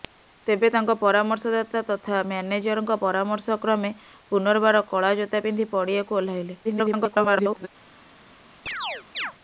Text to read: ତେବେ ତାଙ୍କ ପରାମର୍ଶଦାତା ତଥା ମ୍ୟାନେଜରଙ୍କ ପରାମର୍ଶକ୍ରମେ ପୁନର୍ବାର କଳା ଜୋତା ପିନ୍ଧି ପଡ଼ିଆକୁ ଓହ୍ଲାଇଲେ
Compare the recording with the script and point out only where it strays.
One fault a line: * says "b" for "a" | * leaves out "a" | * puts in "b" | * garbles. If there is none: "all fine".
* garbles